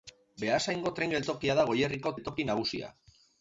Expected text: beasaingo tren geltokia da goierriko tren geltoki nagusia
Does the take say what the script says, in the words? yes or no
no